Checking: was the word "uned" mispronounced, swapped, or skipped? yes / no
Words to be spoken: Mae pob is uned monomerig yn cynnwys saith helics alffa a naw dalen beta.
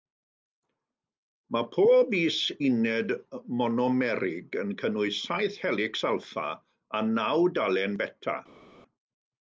no